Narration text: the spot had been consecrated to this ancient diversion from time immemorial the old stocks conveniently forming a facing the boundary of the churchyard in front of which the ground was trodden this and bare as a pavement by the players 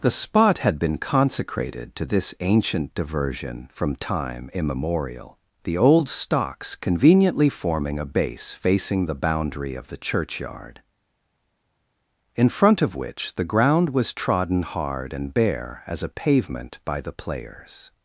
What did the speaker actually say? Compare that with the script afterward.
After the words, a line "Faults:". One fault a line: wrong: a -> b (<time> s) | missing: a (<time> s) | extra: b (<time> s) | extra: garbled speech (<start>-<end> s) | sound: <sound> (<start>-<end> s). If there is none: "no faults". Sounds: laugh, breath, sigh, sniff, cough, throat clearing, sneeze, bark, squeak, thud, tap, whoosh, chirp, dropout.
the spot had been consecrated to this ancient diversion from time immemorial the old stocks conveniently forming a base facing the boundary of the churchyard in front of which the ground was trodden hard and bare as a pavement by the players
Faults:
extra: base (8.1 s)
wrong: this -> hard (14.6 s)